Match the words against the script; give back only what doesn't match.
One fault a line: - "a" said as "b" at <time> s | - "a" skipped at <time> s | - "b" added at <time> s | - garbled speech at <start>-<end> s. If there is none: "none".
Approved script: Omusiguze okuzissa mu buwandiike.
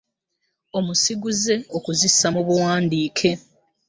none